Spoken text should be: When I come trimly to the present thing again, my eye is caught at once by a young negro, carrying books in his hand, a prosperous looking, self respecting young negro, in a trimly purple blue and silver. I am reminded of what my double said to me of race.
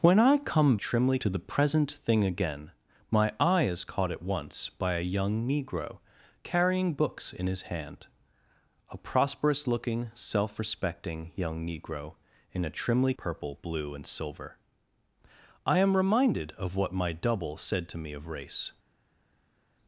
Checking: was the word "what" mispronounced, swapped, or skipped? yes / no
no